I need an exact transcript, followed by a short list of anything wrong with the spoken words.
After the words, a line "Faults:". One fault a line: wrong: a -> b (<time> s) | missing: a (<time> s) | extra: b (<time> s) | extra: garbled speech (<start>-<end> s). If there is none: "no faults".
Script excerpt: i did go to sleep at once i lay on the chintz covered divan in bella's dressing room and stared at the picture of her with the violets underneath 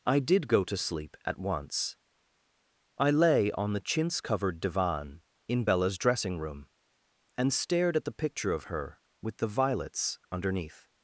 i did go to sleep at once i lay on the chintz covered divan in bella's dressing room and stared at the picture of her with the violets underneath
Faults:
no faults